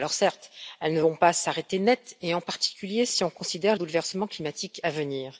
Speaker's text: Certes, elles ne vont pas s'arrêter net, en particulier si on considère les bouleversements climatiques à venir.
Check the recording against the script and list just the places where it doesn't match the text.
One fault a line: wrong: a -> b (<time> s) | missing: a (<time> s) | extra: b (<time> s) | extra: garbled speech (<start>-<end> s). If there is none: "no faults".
missing: les (3.8 s)